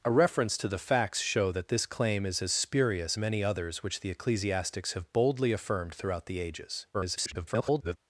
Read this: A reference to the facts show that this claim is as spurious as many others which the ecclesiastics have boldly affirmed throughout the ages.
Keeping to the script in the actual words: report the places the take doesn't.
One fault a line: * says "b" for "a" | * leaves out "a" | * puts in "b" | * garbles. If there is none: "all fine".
* leaves out "as"
* garbles